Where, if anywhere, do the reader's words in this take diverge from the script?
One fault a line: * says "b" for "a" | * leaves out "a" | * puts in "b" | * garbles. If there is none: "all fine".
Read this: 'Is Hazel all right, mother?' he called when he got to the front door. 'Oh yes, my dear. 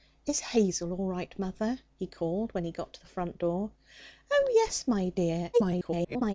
* garbles